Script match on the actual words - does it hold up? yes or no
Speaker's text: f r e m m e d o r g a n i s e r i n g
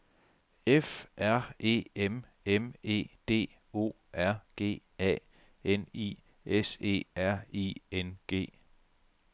yes